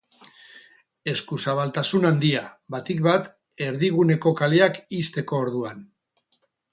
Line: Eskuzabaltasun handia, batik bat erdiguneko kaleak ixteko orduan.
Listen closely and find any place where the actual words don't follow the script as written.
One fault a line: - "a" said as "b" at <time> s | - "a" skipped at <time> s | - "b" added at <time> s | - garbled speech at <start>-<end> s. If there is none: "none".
none